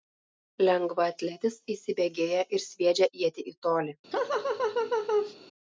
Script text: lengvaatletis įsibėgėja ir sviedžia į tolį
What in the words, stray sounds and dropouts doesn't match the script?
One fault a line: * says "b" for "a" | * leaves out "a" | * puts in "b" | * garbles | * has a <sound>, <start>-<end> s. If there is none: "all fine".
* puts in "ietį"
* has a laugh, 4.1-5.3 s